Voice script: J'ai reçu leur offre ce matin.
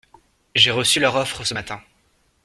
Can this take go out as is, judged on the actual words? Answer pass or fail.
pass